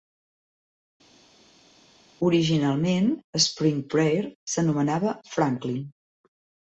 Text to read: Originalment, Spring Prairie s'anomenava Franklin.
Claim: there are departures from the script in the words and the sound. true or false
false